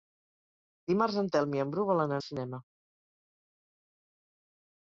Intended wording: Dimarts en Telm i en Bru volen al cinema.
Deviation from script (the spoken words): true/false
false